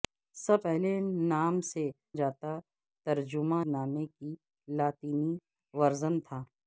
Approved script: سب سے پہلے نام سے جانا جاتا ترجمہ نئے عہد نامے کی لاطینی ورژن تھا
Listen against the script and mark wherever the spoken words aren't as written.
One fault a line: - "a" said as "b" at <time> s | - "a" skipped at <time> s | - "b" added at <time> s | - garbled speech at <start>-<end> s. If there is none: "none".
- "سے" skipped at 0.6 s
- "جانا" skipped at 1.9 s
- "نئے عہد" skipped at 3.6 s